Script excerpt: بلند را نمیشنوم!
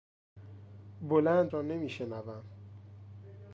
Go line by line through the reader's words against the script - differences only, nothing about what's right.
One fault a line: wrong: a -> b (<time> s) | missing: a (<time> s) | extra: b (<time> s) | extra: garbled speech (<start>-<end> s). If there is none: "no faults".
no faults